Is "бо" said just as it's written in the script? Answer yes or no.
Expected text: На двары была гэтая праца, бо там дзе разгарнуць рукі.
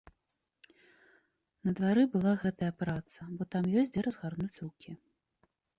yes